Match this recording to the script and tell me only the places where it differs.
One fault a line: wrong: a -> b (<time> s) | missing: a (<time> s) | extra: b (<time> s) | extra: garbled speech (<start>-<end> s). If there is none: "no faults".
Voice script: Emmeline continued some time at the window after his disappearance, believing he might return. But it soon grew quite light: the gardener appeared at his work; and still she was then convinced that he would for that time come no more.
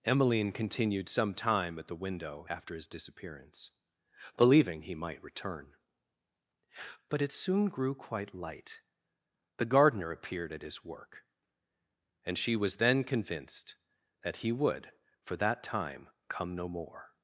missing: still (12.4 s)